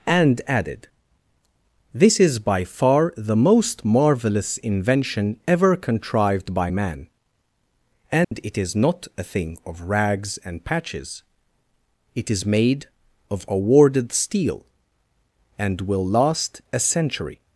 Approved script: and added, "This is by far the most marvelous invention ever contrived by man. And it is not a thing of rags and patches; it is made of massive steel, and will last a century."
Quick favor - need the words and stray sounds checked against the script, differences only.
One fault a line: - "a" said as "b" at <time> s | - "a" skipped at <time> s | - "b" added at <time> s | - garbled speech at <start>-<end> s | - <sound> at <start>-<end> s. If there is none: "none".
- dropout at 8.2-8.3 s
- "massive" said as "awarded" at 13.5 s